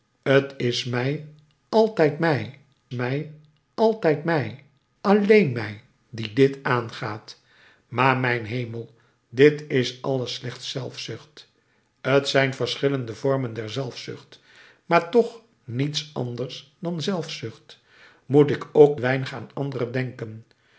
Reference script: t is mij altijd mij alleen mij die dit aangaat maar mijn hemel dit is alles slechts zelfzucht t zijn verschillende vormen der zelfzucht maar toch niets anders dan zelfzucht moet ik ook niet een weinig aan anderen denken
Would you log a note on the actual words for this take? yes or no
yes